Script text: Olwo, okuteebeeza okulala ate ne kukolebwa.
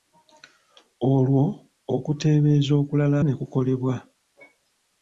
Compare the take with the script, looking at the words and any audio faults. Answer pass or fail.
fail